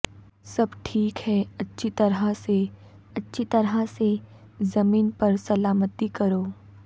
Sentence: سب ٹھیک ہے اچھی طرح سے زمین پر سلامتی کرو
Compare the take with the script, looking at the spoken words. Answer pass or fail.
fail